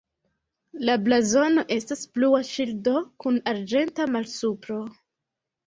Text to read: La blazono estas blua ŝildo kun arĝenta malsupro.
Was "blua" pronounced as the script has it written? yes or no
yes